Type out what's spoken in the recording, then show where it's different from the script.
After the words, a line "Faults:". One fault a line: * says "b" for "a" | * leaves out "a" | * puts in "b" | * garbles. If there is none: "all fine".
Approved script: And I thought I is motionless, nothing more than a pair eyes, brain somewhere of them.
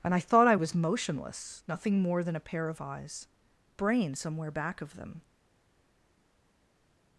And I thought I was motionless, nothing more than a pair of eyes, brain somewhere back of them.
Faults:
* says "was" for "is"
* puts in "of"
* puts in "back"